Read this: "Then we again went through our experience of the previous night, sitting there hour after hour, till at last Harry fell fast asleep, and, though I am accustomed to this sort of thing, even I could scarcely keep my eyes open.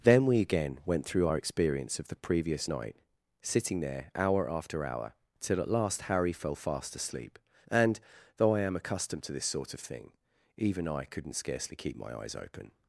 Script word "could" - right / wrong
wrong